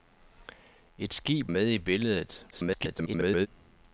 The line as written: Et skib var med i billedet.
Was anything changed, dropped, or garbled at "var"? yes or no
yes